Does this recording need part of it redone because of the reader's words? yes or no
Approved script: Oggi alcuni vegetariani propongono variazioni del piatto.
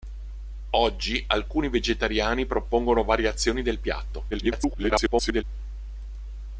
yes